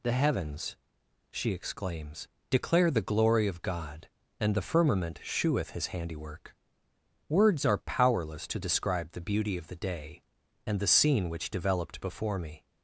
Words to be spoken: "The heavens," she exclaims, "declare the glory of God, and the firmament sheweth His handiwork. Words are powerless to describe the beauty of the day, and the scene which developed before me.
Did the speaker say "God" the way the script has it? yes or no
yes